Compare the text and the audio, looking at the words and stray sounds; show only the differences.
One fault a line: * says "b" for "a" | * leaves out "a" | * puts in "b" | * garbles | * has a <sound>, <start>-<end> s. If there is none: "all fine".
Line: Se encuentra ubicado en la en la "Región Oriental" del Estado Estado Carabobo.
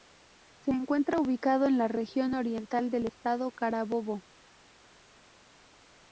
* leaves out "en la"
* leaves out "Estado"